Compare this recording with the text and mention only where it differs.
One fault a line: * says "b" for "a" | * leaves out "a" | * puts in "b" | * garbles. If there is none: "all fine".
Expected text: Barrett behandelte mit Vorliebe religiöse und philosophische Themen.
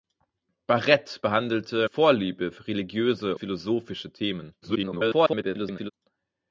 * leaves out "mit"
* leaves out "und"
* garbles